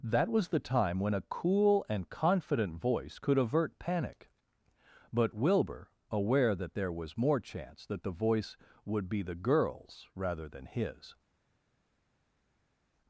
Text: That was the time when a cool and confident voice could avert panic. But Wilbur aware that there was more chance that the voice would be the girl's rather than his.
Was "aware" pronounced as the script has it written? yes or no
yes